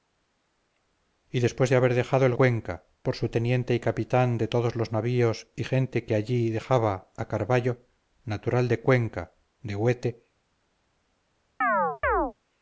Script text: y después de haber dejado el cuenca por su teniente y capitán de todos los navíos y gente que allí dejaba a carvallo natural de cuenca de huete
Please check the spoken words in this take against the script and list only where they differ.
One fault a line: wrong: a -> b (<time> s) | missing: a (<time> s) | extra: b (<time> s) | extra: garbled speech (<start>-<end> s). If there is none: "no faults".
no faults